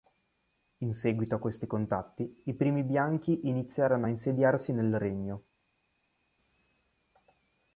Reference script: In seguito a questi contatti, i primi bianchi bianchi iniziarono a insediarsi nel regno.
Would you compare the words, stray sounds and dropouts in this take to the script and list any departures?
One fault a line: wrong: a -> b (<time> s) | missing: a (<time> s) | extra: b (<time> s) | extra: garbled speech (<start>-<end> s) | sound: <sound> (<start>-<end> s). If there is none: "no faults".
missing: bianchi (3.5 s)